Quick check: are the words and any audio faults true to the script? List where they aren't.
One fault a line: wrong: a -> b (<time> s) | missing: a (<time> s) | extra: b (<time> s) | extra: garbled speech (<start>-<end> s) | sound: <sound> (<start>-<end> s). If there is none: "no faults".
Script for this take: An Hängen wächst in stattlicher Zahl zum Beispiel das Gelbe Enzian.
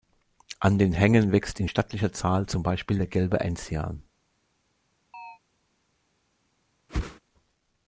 extra: den (0.8 s)
wrong: das -> der (3.0 s)
sound: chirp (5.1-5.4 s)
sound: whoosh (6.9-7.2 s)